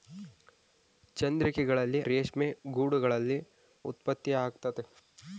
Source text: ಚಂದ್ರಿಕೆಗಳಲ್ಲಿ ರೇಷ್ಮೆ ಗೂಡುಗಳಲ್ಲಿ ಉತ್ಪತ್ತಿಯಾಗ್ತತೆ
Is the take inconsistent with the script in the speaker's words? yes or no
no